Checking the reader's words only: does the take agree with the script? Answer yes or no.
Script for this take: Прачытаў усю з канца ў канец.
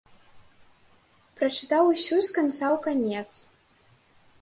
yes